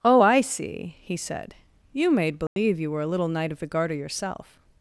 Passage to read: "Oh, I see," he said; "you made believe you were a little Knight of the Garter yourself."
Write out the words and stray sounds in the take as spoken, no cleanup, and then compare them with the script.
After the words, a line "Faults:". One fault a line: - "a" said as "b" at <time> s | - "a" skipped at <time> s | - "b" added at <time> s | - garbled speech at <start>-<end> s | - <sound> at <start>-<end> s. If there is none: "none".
"Oh, I see," he said; "you made believe you were a little Knight of the Garter yourself."
Faults:
- dropout at 2.5-2.6 s